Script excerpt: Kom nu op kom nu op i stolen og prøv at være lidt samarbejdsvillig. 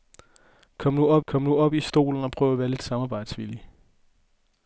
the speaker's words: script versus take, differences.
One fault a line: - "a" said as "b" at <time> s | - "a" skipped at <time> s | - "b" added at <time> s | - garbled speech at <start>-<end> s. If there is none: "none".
none